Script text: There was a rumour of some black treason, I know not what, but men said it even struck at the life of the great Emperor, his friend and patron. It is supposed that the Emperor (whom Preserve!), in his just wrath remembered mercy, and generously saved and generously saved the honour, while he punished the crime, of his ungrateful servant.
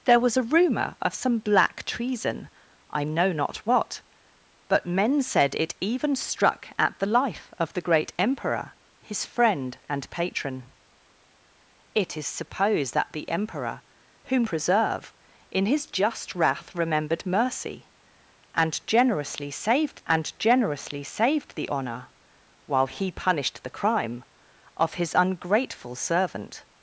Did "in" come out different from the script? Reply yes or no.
no